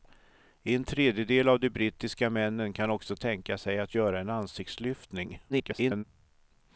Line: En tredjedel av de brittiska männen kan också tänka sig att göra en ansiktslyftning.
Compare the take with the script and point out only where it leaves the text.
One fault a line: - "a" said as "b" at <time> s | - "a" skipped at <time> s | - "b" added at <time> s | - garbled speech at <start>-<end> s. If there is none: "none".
- garbled speech at 5.5-6.0 s